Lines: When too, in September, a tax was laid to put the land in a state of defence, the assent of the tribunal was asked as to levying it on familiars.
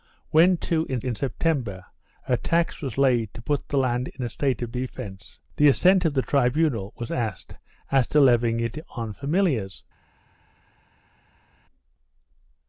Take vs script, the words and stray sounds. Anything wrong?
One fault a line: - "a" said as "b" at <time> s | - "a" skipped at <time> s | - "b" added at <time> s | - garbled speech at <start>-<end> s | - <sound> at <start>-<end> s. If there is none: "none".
- "in" added at 1.0 s